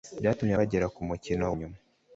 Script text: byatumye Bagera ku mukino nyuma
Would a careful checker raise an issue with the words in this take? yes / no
no